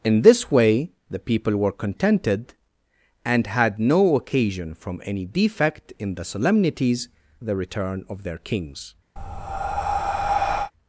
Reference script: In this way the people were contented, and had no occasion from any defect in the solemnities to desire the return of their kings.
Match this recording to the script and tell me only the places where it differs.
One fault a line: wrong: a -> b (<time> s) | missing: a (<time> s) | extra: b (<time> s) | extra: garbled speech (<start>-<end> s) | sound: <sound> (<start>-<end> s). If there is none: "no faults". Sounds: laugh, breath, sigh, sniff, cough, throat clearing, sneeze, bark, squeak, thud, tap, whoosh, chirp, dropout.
missing: to desire (7.1 s)
sound: breath (9.2-10.7 s)